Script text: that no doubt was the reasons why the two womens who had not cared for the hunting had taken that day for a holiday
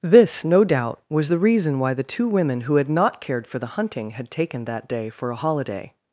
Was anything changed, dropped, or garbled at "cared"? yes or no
no